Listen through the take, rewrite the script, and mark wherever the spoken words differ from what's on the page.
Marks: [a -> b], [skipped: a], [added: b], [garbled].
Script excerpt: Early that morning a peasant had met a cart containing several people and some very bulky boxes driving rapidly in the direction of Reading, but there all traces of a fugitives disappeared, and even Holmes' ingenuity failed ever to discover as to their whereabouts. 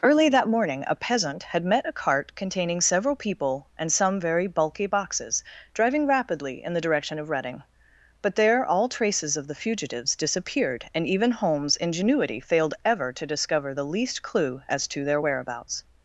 Early that morning a peasant had met a cart containing several people and some very bulky boxes driving rapidly in the direction of Reading, but there all traces of [a -> the] fugitives disappeared, and even Holmes' ingenuity failed ever to discover [added: the least clue] as to their whereabouts.